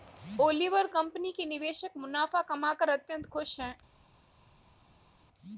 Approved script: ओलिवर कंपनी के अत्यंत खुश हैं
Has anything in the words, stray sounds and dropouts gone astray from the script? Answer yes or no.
yes